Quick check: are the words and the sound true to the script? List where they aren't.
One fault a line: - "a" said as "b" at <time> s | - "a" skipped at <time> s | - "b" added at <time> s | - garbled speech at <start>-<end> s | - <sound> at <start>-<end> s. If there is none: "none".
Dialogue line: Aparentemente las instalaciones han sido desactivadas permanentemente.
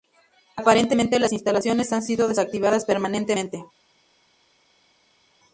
none